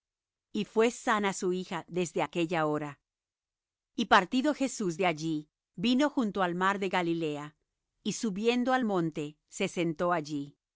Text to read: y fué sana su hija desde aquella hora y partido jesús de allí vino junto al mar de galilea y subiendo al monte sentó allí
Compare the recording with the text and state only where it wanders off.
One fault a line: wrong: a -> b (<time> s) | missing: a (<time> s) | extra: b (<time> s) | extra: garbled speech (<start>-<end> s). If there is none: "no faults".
extra: se (9.5 s)